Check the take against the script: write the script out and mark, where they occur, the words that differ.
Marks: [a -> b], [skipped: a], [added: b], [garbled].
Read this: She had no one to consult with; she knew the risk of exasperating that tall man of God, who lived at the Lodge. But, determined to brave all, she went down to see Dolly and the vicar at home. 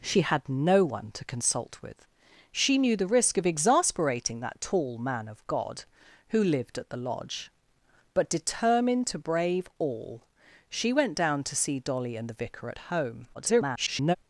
She had no one to consult with; she knew the risk of exasperating that tall man of God, who lived at the Lodge. But, determined to brave all, she went down to see Dolly and the vicar at home. [garbled]